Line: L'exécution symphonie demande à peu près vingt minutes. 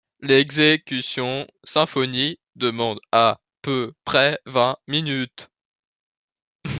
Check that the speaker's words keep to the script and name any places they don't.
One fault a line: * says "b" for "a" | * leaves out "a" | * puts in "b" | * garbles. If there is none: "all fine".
all fine